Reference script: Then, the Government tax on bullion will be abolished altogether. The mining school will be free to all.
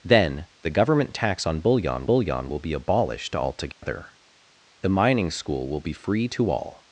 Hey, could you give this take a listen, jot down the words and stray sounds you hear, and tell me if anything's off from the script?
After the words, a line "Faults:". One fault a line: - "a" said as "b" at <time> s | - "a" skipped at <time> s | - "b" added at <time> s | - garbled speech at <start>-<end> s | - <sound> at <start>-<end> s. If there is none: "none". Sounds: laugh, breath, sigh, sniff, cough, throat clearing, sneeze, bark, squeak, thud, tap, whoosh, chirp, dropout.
Then, the Government tax on bullion bullion will be abolished altogether. The mining school will be free to all.
Faults:
- "bullion" added at 2.0 s
- dropout at 3.7-3.8 s